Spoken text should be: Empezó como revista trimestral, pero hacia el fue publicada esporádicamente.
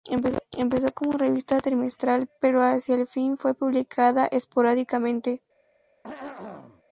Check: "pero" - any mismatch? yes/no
no